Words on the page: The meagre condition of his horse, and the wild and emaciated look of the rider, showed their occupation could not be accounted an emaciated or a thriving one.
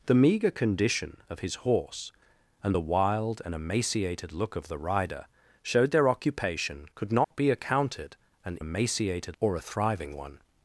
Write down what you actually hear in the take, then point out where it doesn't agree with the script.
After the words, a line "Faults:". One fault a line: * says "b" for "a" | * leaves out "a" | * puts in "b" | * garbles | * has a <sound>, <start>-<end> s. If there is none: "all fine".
The meagre condition of his horse, and the wild and emaciated look of the rider, showed their occupation could not be accounted an emaciated or a thriving one.
Faults:
* has a dropout, 7.2-7.3 s